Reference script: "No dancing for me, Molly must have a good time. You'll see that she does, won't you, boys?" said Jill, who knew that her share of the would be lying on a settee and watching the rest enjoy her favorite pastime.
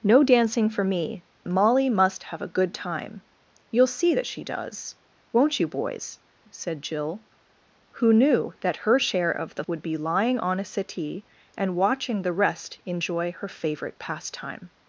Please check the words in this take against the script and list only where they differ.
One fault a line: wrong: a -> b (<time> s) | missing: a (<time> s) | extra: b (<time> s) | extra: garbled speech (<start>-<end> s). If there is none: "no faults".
no faults